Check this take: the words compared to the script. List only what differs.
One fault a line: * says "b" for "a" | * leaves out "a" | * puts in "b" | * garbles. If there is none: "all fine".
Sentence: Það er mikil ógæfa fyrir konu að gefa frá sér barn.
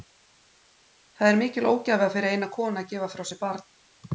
* puts in "eina"